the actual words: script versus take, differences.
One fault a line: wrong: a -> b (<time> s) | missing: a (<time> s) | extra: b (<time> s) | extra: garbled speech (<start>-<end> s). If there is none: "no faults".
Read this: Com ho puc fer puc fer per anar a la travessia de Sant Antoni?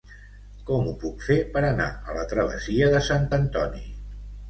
missing: puc fer (1.4 s)